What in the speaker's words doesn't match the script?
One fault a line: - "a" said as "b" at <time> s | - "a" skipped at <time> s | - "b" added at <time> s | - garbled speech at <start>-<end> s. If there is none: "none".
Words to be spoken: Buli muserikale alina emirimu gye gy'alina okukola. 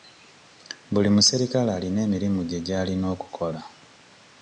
none